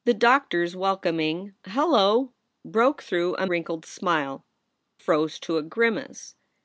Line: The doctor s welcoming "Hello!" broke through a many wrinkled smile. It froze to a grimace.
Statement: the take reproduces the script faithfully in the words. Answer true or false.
false